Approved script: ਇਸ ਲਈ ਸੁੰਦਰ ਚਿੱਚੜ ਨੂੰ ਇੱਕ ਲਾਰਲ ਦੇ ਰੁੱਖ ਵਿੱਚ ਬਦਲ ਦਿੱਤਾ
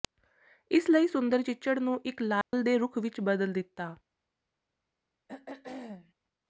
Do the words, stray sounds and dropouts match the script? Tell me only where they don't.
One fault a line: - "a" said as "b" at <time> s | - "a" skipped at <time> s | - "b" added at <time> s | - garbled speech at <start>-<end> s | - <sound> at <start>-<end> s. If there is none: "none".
- dropout at 2.4-2.5 s
- throat clearing at 5.3-6.1 s